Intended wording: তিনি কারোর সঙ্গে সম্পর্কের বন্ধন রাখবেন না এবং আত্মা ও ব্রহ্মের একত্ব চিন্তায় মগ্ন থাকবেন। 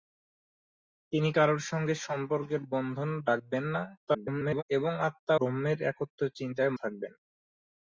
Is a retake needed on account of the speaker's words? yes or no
yes